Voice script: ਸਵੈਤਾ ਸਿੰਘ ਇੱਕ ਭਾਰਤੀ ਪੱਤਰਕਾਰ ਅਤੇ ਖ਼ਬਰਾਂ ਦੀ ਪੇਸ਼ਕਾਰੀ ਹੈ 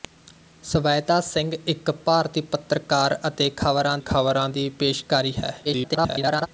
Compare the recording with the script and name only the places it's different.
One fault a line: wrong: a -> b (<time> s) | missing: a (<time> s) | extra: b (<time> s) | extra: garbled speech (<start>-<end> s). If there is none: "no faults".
extra: ਖ਼ਬਰਾਂ (4.0 s)
extra: garbled speech (5.6-6.5 s)